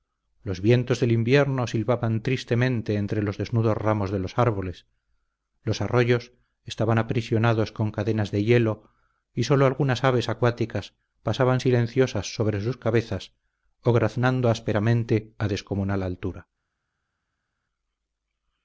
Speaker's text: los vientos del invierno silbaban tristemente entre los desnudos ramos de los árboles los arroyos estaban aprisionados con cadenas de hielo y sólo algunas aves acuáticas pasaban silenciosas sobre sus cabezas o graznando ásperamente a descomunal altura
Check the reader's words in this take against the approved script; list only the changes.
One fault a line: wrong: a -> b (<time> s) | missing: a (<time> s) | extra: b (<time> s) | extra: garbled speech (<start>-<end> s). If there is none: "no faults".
no faults